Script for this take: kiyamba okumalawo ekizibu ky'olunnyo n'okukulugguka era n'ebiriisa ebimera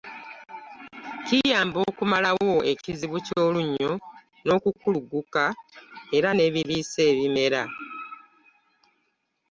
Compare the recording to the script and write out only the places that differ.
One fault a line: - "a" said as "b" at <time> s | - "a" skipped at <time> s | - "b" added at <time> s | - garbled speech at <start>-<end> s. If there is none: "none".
none